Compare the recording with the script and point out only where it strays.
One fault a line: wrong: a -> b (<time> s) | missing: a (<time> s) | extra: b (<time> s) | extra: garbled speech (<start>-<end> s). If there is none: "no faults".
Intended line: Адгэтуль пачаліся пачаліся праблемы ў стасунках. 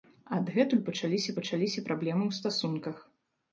no faults